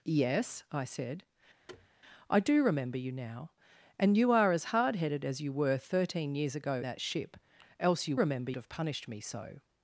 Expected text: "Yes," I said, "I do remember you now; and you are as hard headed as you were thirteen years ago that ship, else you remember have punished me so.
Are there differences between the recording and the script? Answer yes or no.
no